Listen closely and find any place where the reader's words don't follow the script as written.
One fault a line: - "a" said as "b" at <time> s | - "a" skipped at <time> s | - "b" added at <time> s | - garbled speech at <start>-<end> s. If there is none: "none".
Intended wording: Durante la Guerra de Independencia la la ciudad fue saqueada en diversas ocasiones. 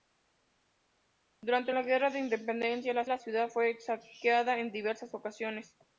none